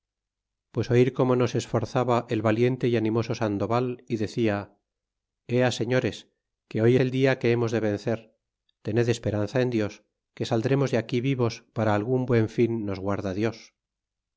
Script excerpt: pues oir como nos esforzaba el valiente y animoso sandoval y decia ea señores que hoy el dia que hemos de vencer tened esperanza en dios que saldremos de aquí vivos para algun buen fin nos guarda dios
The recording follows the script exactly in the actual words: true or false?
true